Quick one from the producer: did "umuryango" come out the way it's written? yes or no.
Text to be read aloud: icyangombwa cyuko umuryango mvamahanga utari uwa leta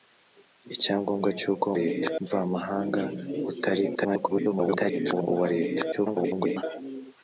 no